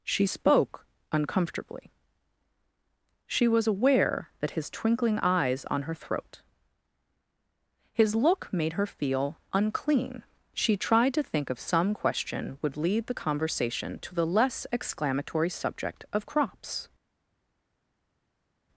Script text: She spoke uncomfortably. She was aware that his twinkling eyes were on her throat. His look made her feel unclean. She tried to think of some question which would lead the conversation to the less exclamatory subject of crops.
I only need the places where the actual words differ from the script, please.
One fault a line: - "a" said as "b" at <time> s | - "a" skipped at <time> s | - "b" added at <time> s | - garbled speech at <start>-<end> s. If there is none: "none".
- "were" skipped at 5.6 s
- "which" skipped at 12.6 s